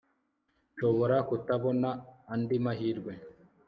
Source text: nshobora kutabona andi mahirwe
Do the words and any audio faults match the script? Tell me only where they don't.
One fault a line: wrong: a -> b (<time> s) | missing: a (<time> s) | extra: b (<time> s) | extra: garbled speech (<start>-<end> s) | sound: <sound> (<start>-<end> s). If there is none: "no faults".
no faults